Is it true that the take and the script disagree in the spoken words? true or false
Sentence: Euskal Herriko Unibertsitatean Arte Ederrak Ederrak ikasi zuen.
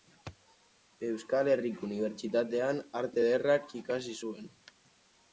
true